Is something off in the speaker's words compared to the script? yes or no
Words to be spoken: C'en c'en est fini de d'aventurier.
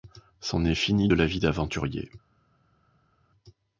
yes